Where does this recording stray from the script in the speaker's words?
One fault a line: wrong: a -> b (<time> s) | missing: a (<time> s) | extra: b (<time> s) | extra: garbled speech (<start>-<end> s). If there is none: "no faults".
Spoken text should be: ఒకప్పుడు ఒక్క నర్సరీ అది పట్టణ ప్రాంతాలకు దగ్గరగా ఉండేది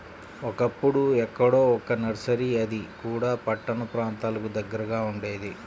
extra: ఎక్కడో (1.2 s)
extra: కూడా (3.0 s)